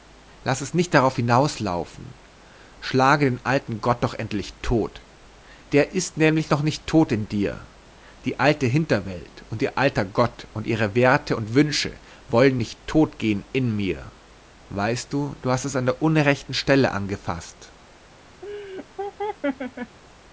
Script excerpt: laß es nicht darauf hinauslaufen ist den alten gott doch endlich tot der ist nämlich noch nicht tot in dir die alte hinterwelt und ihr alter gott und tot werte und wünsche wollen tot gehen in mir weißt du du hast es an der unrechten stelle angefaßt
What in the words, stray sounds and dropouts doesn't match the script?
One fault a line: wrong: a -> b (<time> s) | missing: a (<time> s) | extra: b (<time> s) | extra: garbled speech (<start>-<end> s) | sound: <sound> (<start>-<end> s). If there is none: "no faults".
wrong: ist -> schlage (2.8 s)
wrong: tot -> ihre (10.7 s)
extra: nicht (12.6 s)
sound: laugh (18.4-20.0 s)